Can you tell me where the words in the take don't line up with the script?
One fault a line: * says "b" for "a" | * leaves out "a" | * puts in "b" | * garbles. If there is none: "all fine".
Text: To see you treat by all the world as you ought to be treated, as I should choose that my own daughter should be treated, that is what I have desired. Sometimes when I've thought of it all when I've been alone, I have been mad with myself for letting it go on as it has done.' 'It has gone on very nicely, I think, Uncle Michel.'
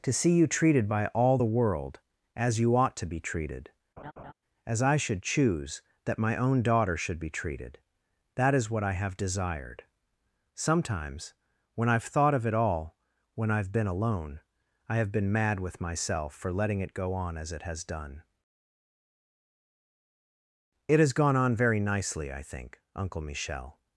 * says "treated" for "treat"